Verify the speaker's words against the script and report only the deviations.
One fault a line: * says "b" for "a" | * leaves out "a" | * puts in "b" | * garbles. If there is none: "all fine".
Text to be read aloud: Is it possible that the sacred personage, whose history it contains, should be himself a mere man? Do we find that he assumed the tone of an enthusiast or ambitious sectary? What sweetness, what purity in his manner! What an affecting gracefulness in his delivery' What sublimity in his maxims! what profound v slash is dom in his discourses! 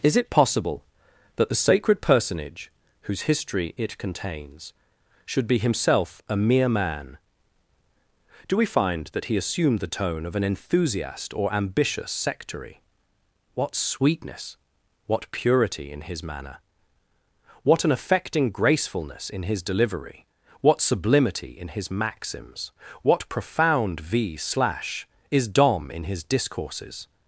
all fine